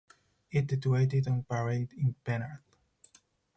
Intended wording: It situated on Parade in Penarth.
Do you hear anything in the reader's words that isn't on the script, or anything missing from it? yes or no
no